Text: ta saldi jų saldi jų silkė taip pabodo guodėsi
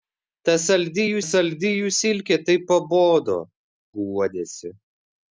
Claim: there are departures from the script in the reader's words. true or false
false